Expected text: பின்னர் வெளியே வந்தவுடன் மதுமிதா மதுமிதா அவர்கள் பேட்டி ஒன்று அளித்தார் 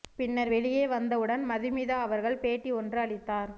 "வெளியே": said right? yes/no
yes